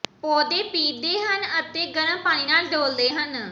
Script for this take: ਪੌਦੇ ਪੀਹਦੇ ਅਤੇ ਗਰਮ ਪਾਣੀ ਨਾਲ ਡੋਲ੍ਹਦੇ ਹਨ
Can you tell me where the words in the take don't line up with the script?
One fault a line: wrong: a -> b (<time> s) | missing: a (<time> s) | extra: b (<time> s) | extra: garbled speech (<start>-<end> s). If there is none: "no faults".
extra: ਹਨ (1.2 s)